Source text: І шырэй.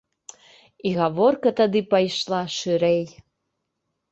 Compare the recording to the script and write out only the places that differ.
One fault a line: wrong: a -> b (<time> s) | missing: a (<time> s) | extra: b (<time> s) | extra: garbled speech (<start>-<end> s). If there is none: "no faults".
extra: гаворка тады пайшла (1.0 s)